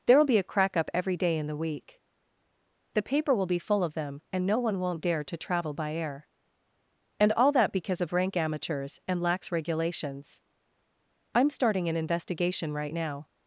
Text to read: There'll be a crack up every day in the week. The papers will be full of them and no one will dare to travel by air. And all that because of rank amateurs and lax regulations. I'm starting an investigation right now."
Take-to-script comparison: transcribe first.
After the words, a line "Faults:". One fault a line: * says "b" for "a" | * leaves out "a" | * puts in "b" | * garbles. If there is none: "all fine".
There'll be a crack up every day in the week. The paper will be full of them and no one won't dare to travel by air. And all that because of rank amateurs and lax regulations. I'm starting an investigation right now."
Faults:
* says "paper" for "papers"
* says "won't" for "will"